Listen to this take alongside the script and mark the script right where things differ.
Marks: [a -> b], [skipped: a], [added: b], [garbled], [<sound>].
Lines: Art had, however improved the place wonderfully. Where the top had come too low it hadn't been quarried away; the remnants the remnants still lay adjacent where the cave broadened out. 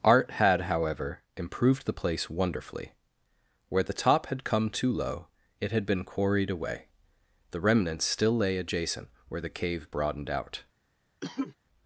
Art had, however improved the place wonderfully. Where the top had come too low it [hadn't -> had] been quarried away; the remnants [skipped: the remnants] still lay adjacent where the cave broadened out. [cough]